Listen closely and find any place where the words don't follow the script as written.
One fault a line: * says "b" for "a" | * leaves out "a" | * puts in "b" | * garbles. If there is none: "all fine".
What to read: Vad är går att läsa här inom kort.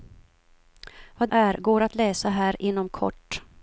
all fine